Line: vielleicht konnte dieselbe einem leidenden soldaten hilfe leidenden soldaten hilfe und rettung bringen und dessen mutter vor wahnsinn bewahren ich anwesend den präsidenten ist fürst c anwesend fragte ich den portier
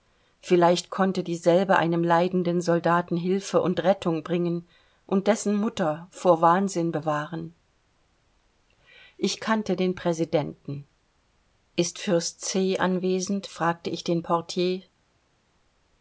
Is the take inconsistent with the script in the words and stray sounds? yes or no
yes